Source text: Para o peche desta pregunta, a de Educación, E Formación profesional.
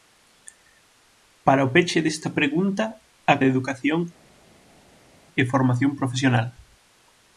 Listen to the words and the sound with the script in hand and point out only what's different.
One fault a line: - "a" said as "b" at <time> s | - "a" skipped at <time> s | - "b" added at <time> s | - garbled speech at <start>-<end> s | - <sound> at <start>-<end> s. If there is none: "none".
none